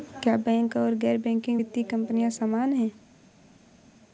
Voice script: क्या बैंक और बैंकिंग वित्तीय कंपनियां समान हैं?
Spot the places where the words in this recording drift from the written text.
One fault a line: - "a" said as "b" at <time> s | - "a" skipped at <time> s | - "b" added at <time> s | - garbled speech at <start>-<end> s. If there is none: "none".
- "गैर" added at 0.9 s